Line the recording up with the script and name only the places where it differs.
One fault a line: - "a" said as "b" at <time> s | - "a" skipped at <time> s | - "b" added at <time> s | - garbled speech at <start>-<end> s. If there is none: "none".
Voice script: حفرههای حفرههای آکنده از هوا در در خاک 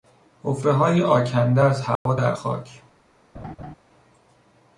- "حفرههای" skipped at 1.0 s
- "در" skipped at 2.3 s